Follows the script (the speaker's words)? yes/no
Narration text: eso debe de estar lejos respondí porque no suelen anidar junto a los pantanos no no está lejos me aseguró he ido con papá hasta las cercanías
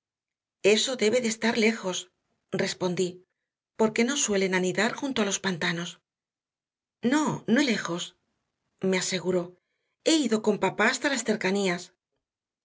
no